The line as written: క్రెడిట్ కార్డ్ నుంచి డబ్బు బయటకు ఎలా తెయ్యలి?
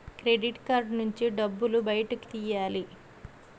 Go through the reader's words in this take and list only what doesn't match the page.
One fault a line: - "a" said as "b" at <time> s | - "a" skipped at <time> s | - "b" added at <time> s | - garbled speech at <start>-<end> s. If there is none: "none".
- "ఎలా" skipped at 2.3 s